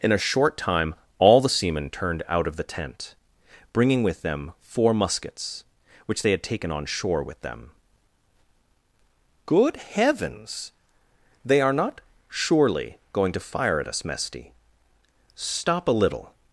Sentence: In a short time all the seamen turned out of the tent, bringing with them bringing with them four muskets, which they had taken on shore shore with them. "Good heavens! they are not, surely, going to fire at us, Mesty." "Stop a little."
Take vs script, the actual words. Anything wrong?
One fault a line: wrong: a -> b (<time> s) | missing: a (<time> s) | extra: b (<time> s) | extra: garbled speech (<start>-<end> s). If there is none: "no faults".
missing: bringing with them (4.5 s)
missing: shore (7.2 s)